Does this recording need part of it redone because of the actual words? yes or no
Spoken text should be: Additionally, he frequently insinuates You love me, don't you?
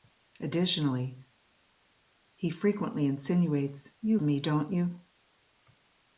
yes